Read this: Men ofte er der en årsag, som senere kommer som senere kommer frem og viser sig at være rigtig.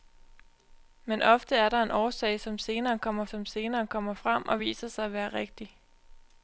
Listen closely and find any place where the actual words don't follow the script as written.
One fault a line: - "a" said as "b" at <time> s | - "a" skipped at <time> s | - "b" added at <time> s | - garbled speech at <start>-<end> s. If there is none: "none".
none